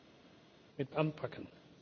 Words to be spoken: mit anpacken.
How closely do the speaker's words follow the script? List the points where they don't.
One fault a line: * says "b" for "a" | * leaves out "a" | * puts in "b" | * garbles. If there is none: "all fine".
all fine